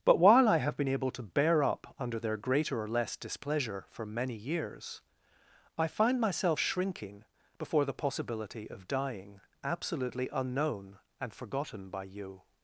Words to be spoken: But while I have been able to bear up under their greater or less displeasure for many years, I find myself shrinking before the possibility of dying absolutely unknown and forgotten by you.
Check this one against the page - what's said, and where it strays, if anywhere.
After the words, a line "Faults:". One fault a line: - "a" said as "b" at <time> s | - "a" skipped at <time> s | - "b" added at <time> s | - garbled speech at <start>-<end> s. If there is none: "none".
But while I have been able to bear up under their greater or less displeasure for many years, I find myself shrinking before the possibility of dying absolutely unknown and forgotten by you.
Faults:
none